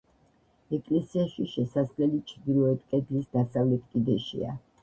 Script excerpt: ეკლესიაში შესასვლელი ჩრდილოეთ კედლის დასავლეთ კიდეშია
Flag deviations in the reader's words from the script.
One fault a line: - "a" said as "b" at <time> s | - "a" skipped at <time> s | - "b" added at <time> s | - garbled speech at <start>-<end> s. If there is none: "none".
none